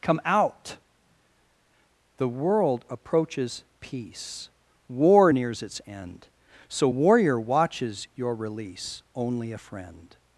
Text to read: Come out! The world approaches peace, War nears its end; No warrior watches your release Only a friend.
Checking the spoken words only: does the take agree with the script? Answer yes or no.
no